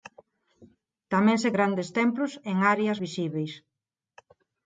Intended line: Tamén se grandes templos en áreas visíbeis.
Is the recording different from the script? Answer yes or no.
no